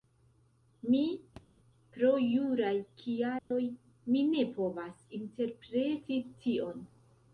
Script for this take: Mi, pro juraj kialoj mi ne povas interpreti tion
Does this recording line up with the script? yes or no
yes